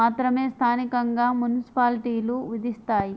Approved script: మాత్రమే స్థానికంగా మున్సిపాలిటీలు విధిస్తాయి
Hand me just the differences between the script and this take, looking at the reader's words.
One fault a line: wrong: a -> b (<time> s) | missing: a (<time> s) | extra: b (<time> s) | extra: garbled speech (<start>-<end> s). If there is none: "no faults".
no faults